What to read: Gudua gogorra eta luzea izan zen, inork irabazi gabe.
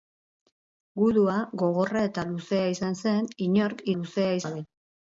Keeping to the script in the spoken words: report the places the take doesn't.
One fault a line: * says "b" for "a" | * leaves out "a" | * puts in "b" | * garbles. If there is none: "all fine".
* says "luzea" for "irabazi"